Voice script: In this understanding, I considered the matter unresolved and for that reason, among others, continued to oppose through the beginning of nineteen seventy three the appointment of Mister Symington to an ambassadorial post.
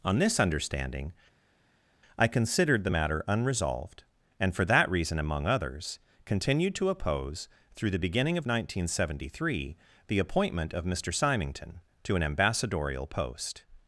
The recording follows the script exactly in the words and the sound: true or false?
false